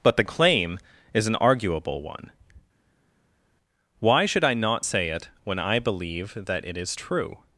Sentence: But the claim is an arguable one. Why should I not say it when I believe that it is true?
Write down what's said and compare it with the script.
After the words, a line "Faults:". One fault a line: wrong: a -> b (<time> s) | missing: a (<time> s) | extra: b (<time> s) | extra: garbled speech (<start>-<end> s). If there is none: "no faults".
But the claim is an arguable one. Why should I not say it when I believe that it is true?
Faults:
no faults